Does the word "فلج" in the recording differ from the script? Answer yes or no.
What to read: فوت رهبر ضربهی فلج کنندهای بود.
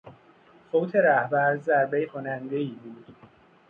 yes